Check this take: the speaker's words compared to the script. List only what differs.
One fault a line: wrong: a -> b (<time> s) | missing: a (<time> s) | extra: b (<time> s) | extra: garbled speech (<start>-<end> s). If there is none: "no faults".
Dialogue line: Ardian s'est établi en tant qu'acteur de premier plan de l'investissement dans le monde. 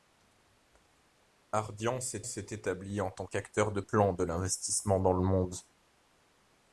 extra: s'est (2.2 s)
missing: premier (3.8 s)